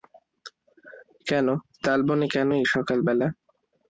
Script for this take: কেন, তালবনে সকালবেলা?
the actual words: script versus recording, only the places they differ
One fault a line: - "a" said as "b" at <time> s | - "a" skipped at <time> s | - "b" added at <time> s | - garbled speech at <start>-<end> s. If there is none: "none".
- "কেন এই" added at 2.3 s